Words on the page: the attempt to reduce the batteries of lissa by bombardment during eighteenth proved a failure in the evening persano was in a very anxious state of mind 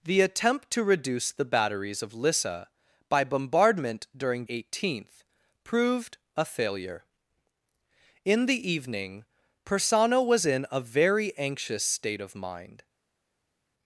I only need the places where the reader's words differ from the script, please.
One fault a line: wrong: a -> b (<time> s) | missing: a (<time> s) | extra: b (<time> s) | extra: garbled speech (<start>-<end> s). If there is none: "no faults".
no faults